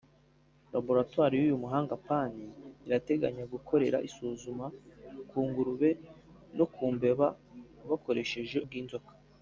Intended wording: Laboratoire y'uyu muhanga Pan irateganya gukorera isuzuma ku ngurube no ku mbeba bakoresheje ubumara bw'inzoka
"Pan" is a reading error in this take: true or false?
false